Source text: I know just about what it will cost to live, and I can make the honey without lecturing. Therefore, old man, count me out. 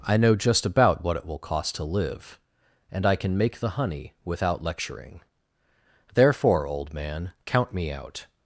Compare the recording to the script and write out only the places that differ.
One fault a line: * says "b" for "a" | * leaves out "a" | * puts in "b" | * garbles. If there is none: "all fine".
all fine